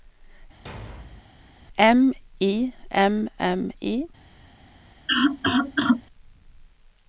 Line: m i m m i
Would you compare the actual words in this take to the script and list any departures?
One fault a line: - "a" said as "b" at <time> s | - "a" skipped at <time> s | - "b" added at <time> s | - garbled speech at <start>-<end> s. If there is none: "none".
none